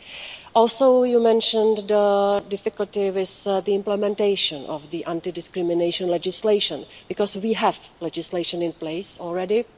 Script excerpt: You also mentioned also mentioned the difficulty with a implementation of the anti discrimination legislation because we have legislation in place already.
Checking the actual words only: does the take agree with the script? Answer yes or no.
no